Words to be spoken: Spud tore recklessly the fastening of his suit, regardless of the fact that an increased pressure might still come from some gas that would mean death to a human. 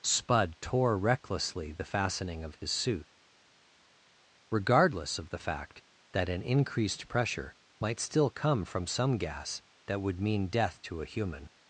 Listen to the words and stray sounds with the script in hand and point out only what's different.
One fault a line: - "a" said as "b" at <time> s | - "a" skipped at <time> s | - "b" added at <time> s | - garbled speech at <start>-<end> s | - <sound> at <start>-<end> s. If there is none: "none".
none